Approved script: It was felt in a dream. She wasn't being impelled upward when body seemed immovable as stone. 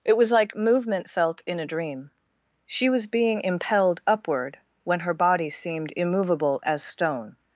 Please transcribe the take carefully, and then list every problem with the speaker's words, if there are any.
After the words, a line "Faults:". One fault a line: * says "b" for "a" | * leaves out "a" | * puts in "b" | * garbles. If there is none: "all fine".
It was like movement felt in a dream. She was being impelled upward when her body seemed immovable as stone.
Faults:
* puts in "like movement"
* says "was" for "wasn't"
* puts in "her"